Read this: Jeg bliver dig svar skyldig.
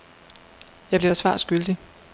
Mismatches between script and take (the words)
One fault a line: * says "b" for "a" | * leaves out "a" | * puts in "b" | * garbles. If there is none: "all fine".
all fine